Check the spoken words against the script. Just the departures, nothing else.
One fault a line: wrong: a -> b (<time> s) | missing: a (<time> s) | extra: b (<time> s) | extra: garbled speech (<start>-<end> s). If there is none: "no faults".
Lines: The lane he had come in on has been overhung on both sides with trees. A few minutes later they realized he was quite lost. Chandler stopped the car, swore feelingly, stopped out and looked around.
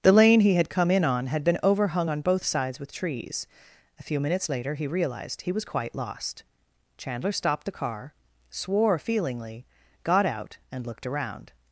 wrong: has -> had (1.3 s)
wrong: they -> he (4.8 s)
wrong: stopped -> got (10.0 s)